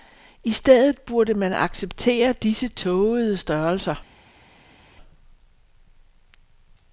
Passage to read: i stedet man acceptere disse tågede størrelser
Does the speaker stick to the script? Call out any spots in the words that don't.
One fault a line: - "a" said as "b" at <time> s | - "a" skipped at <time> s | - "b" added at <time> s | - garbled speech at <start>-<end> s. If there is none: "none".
- "burde" added at 1.0 s